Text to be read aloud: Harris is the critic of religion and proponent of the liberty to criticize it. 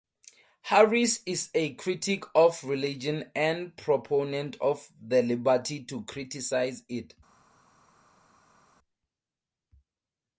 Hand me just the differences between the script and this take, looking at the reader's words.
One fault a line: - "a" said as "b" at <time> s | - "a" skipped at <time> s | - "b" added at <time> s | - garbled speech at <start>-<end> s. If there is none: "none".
- "the" said as "a" at 1.5 s